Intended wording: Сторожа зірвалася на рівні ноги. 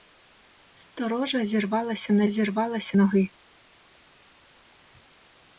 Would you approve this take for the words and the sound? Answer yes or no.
no